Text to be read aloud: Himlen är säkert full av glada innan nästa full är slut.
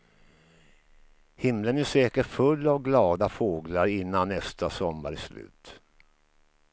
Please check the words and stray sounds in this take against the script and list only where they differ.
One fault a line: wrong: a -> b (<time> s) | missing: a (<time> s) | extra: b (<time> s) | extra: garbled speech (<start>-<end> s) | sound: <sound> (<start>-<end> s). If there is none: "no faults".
extra: fåglar (3.3 s)
wrong: full -> sommar (4.7 s)